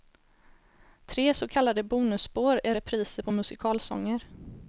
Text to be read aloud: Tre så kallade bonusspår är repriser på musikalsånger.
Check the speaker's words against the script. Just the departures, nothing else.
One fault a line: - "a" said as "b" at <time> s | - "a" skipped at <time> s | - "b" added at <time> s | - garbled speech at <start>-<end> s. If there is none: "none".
none